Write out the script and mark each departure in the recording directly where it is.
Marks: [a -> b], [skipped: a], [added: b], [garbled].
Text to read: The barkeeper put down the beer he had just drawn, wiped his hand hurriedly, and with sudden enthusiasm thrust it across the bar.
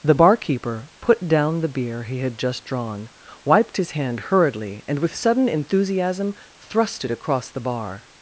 The barkeeper put down the beer he had just drawn, wiped his hand hurriedly, and with sudden enthusiasm thrust it across the bar.